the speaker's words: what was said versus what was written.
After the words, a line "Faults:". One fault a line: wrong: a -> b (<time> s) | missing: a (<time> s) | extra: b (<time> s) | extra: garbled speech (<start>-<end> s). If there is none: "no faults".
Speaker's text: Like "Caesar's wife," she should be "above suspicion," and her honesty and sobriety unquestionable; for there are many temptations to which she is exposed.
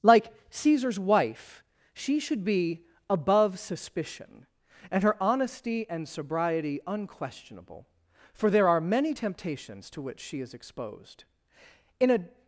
Like "Caesar's wife," she should be "above suspicion," and her honesty and sobriety unquestionable; for there are many temptations to which she is exposed. In a
Faults:
extra: In a (12.0 s)